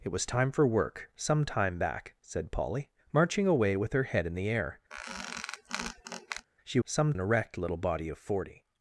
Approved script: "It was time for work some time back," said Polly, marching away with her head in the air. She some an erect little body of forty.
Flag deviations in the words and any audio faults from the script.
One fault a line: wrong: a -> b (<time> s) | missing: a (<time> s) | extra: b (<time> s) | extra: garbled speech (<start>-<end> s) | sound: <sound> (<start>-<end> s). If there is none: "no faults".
sound: squeak (4.9-6.5 s)